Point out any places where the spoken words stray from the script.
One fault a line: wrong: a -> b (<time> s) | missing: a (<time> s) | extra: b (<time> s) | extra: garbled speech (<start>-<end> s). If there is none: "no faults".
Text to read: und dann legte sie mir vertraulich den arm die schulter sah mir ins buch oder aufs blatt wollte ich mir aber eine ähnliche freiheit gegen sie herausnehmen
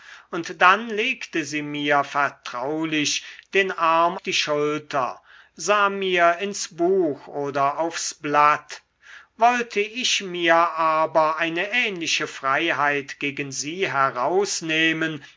no faults